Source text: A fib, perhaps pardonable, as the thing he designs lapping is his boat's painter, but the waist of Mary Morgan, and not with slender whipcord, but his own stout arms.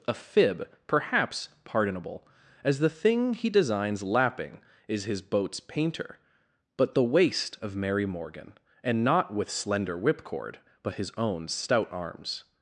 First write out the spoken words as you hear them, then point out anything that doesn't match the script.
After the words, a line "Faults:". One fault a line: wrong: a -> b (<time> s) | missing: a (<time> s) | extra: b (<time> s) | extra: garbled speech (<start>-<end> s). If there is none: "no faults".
A fib, perhaps pardonable, as the thing he designs lapping is his boat's painter, but the waist of Mary Morgan, and not with slender whipcord, but his own stout arms.
Faults:
no faults